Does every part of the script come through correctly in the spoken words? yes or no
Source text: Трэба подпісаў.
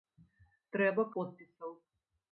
yes